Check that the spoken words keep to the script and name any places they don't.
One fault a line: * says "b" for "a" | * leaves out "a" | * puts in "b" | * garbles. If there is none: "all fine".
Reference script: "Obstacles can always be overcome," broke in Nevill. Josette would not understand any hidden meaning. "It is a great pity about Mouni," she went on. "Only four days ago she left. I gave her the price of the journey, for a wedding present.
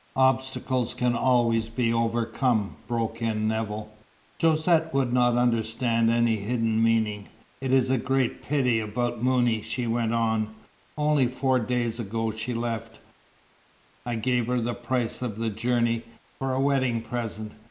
all fine